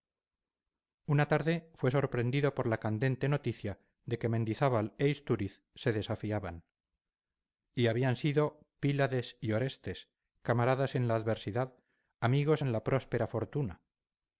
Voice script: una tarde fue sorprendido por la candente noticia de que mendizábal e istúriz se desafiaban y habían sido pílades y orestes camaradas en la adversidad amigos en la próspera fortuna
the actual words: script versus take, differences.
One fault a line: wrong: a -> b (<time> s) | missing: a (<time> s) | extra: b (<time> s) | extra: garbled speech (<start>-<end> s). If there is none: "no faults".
no faults